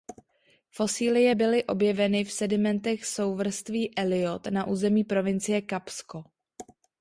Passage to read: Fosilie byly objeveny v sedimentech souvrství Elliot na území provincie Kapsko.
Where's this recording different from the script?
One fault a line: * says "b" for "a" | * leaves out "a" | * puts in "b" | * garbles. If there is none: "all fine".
all fine